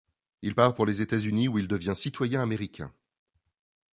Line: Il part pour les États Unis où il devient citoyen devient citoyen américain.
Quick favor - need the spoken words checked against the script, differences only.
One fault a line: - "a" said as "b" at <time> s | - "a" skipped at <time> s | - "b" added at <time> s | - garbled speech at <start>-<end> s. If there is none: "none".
- "devient citoyen" skipped at 2.4 s